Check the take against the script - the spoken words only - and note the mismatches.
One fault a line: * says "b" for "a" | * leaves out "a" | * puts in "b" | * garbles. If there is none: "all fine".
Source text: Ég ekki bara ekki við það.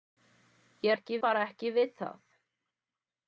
all fine